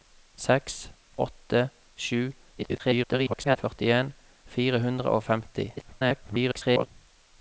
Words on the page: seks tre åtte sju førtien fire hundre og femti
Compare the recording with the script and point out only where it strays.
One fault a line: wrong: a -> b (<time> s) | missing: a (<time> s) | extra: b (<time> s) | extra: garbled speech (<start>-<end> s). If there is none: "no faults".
missing: tre (0.8 s)
extra: garbled speech (2.6-3.6 s)
extra: garbled speech (5.8-6.9 s)